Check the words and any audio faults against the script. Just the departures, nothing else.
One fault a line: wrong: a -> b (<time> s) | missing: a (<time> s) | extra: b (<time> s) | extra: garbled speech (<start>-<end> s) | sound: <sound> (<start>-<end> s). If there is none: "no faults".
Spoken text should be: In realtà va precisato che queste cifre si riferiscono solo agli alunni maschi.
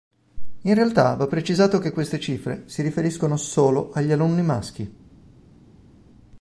no faults